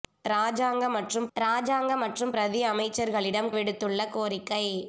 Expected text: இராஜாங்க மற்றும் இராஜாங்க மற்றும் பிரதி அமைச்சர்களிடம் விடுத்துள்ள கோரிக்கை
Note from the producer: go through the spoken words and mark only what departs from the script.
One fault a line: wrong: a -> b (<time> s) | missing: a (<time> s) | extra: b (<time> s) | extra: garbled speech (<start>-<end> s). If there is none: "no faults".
no faults